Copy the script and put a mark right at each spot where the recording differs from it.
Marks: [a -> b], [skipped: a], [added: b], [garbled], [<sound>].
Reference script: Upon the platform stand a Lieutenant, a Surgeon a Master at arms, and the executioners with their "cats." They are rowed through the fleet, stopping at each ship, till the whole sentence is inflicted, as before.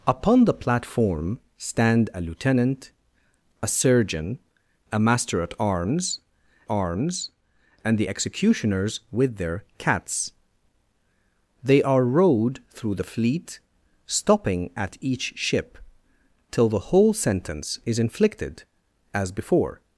Upon the platform stand a Lieutenant, a Surgeon a Master at arms, [added: arms] and the executioners with their "cats." They are rowed through the fleet, stopping at each ship, till the whole sentence is inflicted, as before.